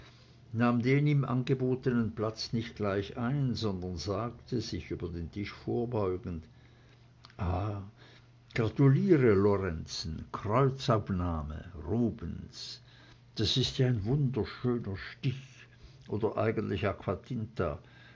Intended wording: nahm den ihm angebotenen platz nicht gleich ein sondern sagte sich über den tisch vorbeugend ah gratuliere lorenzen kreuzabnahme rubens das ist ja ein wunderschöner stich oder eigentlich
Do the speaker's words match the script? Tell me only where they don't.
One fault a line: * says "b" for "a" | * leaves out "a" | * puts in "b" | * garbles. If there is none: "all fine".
all fine